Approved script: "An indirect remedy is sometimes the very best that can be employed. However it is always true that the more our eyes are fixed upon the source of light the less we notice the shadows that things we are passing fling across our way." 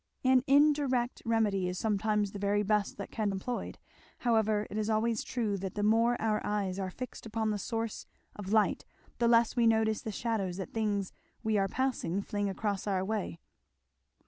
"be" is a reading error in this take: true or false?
true